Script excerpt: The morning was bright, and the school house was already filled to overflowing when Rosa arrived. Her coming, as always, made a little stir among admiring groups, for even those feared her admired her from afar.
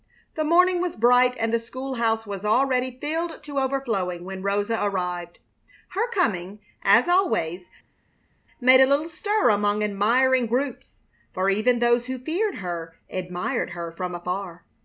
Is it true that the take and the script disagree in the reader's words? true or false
true